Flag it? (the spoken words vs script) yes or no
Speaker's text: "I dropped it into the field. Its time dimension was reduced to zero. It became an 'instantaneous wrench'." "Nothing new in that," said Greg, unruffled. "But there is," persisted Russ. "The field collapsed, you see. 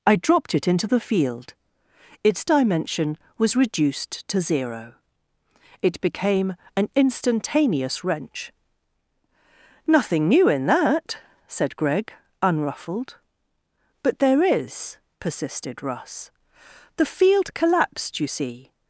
yes